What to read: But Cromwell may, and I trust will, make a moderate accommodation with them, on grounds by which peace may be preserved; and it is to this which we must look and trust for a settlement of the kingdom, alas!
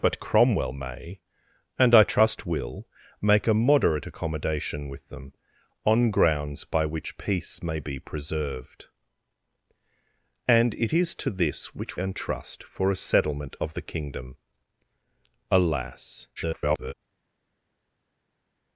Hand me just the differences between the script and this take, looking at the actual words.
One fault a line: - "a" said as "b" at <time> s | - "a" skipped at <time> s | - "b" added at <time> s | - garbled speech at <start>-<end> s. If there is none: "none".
- "we must look" skipped at 12.0 s
- garbled speech at 16.4-16.9 s